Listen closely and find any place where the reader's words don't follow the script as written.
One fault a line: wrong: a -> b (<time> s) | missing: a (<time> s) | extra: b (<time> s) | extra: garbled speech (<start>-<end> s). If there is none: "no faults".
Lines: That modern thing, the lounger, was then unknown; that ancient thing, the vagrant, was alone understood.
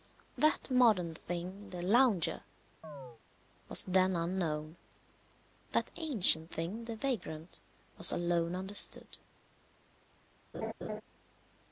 no faults